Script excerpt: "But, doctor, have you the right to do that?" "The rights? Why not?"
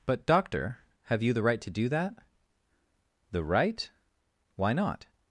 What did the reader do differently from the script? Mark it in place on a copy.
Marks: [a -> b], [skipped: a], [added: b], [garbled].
"But, doctor, have you the right to do that?" "The [rights? -> right] Why not?"